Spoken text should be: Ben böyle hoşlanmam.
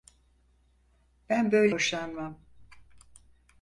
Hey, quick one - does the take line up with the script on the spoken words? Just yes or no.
yes